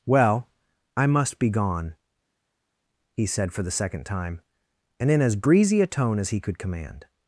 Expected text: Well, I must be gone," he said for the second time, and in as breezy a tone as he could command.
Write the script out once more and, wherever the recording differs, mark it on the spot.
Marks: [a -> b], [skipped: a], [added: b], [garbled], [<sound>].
Well, I must be gone," he said for the second time, and in as breezy a tone as he could command.